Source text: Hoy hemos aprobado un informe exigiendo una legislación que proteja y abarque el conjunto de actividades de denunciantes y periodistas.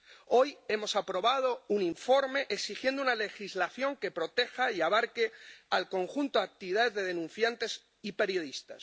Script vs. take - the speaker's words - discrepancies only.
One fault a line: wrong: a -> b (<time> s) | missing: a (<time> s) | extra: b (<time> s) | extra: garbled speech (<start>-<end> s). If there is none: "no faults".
no faults